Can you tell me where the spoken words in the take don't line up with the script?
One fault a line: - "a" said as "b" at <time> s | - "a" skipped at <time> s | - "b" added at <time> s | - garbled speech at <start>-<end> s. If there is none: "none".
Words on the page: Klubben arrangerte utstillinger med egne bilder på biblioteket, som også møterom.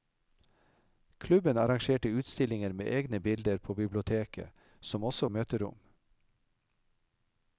none